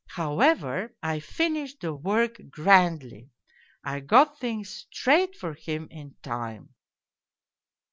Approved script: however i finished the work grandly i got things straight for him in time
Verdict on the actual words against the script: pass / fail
pass